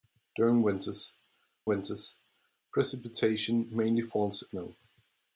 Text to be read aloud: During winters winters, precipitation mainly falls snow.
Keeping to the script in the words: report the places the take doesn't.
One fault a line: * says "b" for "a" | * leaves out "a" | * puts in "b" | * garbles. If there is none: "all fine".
all fine